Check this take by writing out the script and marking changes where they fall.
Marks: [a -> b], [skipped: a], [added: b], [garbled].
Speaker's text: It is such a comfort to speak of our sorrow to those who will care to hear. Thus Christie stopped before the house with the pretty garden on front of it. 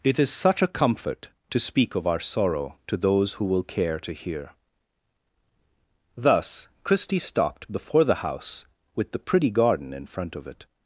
It is such a comfort to speak of our sorrow to those who will care to hear. Thus Christie stopped before the house with the pretty garden [on -> in] front of it.